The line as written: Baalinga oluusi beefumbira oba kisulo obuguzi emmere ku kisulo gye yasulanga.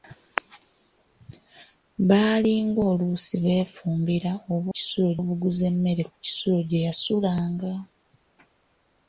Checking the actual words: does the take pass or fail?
pass